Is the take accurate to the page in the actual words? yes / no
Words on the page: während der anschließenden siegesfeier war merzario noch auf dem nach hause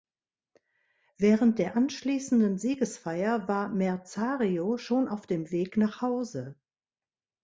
no